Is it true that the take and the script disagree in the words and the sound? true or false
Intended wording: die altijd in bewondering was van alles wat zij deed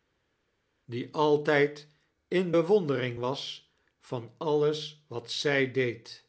false